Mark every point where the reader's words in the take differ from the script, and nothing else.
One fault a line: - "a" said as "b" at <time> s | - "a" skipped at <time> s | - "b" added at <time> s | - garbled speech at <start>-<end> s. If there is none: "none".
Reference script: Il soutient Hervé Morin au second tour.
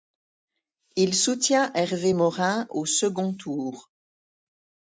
none